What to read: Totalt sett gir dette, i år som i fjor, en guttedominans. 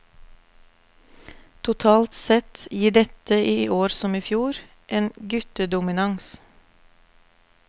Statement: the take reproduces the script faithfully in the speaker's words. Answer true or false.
true